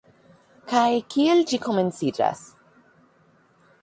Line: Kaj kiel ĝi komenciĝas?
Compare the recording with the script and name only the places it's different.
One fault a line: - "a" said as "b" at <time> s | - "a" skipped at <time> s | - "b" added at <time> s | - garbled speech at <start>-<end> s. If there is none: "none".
none